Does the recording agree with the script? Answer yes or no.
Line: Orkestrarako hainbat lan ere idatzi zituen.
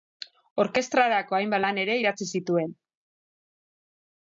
yes